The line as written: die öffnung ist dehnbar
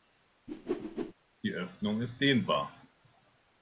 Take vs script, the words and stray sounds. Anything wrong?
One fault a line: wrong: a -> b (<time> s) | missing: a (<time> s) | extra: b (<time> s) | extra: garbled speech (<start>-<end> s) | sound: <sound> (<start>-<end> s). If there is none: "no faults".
sound: whoosh (0.5-1.1 s)